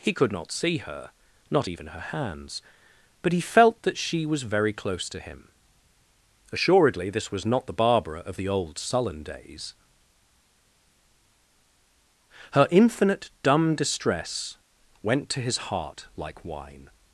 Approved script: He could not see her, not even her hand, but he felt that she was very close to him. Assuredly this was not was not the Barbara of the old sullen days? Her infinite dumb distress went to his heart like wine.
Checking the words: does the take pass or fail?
fail